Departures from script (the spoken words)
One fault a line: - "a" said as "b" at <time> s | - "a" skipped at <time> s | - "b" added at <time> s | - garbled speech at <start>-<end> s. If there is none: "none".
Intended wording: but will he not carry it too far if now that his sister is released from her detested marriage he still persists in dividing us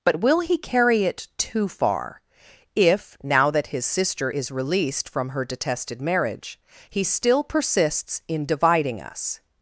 - "not" skipped at 0.6 s